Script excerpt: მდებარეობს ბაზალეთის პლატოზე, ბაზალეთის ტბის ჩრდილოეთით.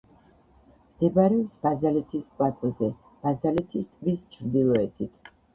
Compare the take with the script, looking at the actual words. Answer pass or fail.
pass